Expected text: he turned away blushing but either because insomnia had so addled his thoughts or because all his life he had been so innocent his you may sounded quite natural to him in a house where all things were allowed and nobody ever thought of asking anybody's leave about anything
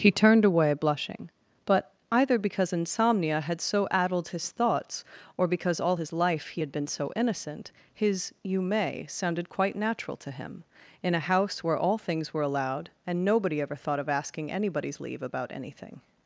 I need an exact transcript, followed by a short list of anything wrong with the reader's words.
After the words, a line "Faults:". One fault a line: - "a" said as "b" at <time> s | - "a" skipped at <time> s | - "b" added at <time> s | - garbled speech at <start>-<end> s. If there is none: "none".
he turned away blushing but either because insomnia had so addled his thoughts or because all his life he had been so innocent his you may sounded quite natural to him in a house where all things were allowed and nobody ever thought of asking anybody's leave about anything
Faults:
none